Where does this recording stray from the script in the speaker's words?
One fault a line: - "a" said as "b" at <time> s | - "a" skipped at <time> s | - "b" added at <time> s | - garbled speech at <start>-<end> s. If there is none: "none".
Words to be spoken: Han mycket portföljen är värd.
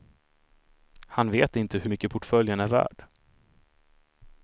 - "vet inte hur" added at 1.3 s